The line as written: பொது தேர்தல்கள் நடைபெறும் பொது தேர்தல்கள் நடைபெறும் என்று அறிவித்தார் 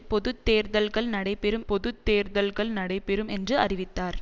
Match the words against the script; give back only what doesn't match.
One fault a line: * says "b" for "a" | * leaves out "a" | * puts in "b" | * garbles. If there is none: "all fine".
all fine